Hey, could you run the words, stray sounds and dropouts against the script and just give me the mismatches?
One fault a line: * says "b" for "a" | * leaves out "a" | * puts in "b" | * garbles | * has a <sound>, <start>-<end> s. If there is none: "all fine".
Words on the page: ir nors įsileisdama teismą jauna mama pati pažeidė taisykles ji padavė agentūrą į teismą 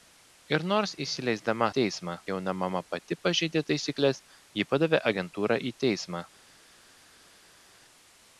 all fine